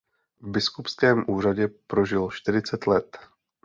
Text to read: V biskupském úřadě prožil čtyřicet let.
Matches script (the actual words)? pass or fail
pass